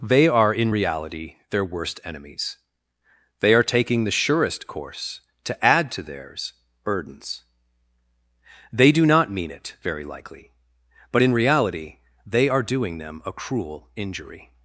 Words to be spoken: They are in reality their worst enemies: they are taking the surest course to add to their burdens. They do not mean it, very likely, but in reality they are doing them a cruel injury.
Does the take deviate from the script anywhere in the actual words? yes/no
yes